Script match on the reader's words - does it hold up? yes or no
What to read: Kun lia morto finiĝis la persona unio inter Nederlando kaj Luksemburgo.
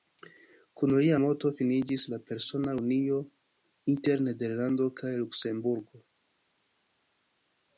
yes